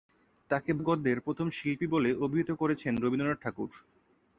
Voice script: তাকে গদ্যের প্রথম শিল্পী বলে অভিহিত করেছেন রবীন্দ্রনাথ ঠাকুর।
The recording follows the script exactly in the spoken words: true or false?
true